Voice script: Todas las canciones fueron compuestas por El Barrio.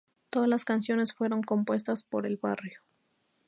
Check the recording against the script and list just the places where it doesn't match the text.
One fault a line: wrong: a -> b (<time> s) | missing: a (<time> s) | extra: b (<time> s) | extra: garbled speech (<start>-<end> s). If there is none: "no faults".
no faults